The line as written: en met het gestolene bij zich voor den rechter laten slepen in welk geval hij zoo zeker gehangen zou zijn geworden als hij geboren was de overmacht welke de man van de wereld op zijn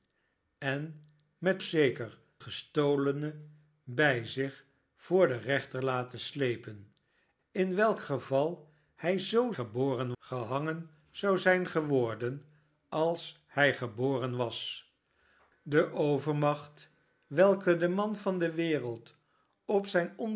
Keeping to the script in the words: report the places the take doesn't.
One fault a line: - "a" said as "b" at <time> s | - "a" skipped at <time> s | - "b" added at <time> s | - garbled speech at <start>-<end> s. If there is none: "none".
- "het" said as "zeker" at 1.6 s
- "zeker" said as "geboren" at 9.5 s